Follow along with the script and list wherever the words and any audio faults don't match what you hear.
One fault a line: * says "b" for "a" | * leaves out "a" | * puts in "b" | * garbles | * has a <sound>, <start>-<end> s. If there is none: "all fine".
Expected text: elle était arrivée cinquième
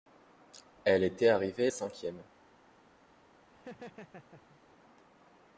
* has a laugh, 3.5-4.6 s